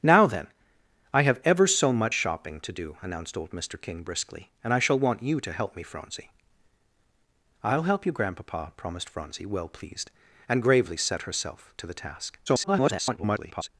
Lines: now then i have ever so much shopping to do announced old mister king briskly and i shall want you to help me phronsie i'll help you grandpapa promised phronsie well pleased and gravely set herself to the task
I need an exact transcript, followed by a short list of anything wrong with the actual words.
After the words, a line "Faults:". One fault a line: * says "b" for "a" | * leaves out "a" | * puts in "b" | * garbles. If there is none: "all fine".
now then i have ever so much shopping to do announced old mister king briskly and i shall want you to help me phronsie i'll help you grandpapa promised phronsie well pleased and gravely set herself to the task [garbled]
Faults:
* garbles